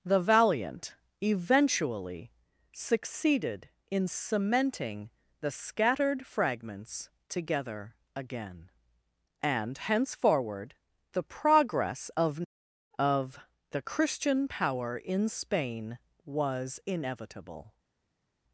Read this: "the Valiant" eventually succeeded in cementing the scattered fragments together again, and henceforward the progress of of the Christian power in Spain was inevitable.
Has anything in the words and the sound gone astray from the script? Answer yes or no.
no